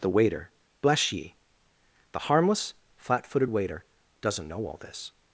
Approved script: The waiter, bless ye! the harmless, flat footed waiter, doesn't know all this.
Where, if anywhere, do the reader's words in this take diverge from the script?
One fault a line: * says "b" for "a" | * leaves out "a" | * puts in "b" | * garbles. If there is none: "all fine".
all fine